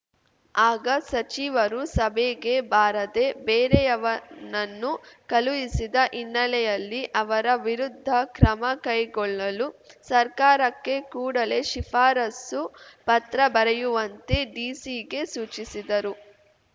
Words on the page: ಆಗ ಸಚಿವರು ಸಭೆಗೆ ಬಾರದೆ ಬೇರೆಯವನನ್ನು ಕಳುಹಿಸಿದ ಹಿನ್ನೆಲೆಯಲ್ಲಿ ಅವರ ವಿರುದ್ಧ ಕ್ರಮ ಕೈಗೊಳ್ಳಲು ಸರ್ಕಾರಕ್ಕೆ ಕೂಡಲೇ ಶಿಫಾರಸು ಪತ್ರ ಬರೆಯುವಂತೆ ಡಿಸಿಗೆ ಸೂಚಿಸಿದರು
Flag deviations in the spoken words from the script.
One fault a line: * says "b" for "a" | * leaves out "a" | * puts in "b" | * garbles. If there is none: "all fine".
all fine